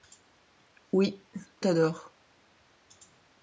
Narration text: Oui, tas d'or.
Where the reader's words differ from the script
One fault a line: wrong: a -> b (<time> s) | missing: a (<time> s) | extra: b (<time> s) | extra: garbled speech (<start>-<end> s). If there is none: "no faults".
no faults